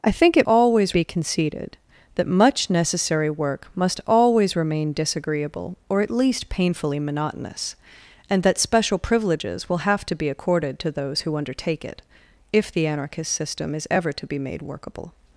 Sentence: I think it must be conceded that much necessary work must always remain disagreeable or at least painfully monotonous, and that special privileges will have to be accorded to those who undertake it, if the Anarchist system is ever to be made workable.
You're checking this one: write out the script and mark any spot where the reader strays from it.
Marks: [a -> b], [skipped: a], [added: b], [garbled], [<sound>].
I think it [must -> always] be conceded that much necessary work must always remain disagreeable or at least painfully monotonous, and that special privileges will have to be accorded to those who undertake it, if the Anarchist system is ever to be made workable.